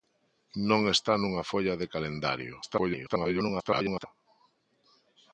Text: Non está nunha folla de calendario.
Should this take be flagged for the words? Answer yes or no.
yes